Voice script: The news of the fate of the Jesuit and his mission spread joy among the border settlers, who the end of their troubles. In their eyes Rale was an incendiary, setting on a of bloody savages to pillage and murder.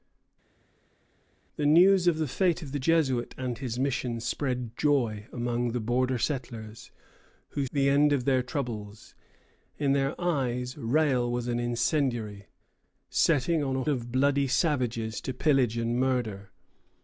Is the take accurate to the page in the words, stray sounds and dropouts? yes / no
yes